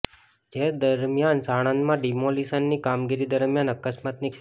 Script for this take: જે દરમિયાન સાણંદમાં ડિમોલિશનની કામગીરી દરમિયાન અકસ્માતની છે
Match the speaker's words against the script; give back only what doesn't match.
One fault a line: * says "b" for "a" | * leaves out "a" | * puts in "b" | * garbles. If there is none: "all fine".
all fine